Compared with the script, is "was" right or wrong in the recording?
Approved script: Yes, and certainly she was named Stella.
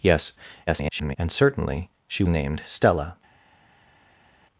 wrong